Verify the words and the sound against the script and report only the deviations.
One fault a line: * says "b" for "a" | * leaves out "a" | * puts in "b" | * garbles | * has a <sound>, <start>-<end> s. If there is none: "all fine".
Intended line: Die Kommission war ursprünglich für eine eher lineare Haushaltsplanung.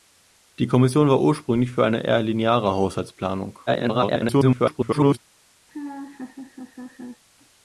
* garbles
* has a laugh, 5.7-7.2 s